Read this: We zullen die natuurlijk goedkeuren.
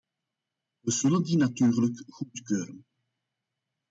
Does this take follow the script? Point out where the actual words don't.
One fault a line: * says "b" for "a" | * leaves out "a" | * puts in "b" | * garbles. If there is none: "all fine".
all fine